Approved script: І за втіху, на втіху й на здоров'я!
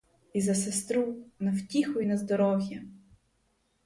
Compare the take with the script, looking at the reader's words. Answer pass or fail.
fail